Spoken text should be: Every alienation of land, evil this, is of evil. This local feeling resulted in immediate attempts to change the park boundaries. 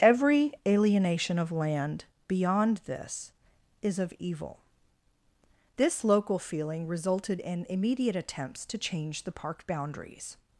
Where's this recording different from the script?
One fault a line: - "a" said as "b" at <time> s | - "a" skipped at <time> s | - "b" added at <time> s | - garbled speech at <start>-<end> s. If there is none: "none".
- "evil" said as "beyond" at 2.3 s